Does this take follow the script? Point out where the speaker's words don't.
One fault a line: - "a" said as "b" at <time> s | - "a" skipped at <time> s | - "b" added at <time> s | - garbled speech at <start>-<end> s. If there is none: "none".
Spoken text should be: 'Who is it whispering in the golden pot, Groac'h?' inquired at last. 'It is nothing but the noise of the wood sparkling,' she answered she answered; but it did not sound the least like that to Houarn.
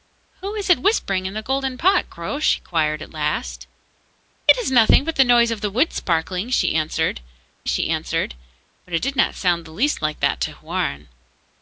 none